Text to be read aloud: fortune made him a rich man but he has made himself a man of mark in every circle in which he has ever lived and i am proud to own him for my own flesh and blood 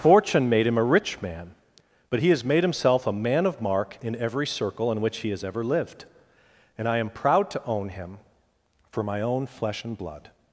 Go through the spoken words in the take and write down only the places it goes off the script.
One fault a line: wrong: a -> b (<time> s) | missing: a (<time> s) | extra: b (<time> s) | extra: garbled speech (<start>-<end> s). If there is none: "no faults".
no faults